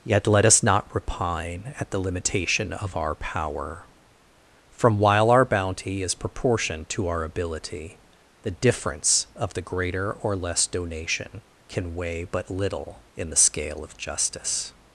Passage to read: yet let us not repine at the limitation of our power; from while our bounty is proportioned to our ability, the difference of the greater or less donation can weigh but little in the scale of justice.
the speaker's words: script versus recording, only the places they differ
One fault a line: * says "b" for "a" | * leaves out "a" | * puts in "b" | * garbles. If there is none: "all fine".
all fine